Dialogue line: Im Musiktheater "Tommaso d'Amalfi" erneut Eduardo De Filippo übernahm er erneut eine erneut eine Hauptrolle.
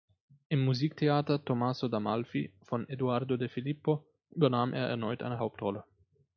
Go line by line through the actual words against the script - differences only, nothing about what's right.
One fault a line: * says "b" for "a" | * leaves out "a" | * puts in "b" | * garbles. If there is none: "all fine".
* says "von" for "erneut"
* leaves out "erneut eine"